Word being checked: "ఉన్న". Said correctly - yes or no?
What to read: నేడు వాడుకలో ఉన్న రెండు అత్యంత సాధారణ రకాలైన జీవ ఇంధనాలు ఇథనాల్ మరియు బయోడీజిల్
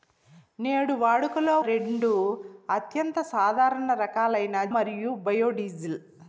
no